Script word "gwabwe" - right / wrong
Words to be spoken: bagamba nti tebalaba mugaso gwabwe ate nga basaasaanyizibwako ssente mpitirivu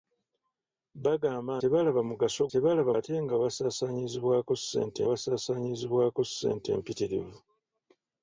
wrong